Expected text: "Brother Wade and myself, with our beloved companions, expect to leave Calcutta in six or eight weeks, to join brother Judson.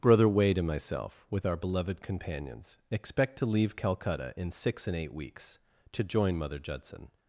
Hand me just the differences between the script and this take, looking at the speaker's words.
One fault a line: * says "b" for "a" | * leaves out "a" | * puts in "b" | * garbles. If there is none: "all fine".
* says "and" for "or"
* says "mother" for "brother"